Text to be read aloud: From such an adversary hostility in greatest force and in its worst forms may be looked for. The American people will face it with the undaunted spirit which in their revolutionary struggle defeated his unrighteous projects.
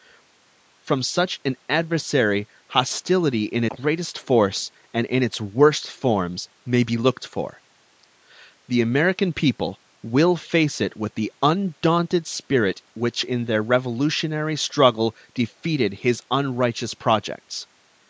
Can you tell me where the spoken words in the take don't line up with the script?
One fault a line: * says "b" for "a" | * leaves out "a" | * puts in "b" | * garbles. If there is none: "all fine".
all fine